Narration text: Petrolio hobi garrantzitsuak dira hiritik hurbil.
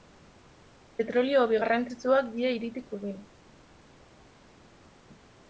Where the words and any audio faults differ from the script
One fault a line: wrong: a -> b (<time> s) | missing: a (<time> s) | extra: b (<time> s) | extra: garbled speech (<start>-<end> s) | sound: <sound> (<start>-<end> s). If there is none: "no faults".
no faults